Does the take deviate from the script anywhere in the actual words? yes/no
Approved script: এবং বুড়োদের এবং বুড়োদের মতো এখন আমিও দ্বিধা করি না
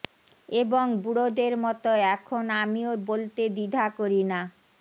yes